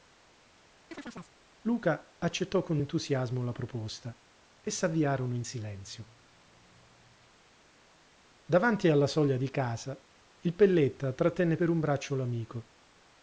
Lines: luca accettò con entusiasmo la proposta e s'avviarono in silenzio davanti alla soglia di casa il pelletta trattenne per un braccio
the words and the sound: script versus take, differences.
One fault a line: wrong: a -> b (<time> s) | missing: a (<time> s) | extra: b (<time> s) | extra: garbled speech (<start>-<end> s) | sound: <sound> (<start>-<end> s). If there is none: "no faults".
sound: chirp (0.9-1.4 s)